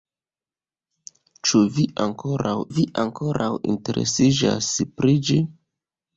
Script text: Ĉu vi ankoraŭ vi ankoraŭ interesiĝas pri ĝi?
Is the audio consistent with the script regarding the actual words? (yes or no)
yes